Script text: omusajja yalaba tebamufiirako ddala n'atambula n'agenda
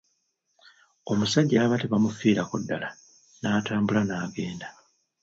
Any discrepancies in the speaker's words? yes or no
no